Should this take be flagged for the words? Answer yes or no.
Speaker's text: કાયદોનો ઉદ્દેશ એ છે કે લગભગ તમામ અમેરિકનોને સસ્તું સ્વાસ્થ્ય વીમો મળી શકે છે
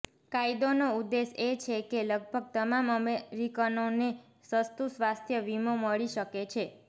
no